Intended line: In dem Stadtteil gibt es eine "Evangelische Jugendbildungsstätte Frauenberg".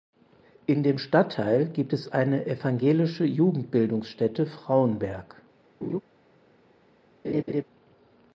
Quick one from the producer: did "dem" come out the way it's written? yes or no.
yes